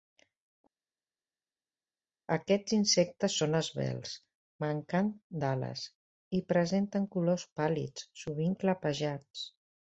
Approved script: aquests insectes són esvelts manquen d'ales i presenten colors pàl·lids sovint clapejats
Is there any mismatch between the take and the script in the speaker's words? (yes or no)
no